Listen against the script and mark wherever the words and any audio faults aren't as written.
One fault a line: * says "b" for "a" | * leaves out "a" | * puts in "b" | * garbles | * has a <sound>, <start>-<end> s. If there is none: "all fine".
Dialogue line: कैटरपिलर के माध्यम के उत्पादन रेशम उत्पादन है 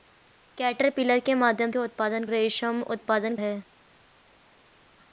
all fine